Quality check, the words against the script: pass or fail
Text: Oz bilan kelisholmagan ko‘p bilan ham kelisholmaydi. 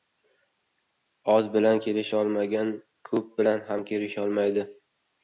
pass